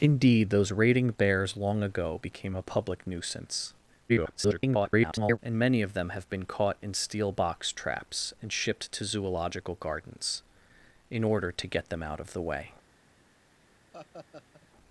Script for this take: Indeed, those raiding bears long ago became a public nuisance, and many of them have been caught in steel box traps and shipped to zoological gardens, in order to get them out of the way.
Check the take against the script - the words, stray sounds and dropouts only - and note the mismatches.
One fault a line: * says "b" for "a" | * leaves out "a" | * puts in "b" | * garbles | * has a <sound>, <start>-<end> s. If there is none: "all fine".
* garbles
* has a laugh, 13.9-14.7 s